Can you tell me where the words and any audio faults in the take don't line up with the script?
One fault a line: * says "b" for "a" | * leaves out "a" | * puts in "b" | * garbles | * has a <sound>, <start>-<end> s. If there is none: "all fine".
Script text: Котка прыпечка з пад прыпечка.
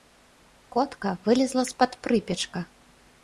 * says "вылезла" for "прыпечка"